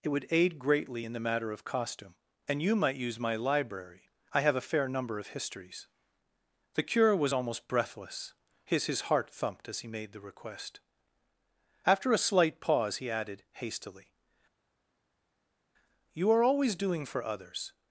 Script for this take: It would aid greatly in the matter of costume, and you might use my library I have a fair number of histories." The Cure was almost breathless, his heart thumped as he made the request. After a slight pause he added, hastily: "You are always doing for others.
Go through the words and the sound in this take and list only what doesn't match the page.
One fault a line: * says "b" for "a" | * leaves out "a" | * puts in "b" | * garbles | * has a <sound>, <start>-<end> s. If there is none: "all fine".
* puts in "his"